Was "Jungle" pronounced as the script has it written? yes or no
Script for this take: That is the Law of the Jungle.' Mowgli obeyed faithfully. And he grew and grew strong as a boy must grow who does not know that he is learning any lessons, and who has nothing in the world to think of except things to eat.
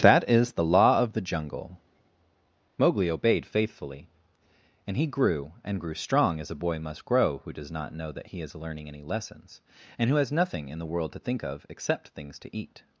yes